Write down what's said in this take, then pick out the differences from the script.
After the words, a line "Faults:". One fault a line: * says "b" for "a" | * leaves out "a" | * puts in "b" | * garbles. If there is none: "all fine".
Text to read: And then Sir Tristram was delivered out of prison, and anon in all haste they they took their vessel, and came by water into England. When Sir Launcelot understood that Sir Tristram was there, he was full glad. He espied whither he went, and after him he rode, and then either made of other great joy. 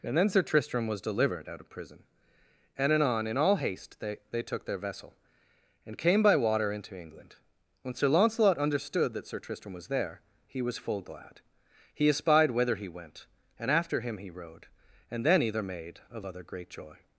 And then Sir Tristram was delivered out of prison, and anon in all haste they they took their vessel, and came by water into England. When Sir Launcelot understood that Sir Tristram was there, he was full glad. He espied whither he went, and after him he rode, and then either made of other great joy.
Faults:
all fine